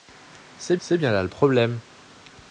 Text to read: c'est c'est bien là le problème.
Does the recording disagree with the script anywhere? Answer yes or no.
no